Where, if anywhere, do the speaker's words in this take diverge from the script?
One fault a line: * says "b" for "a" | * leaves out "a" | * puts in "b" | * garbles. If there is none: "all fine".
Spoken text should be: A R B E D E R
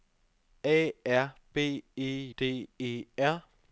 all fine